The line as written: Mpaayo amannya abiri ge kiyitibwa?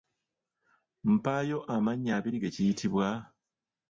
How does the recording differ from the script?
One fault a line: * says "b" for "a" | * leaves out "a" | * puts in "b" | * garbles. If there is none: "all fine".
all fine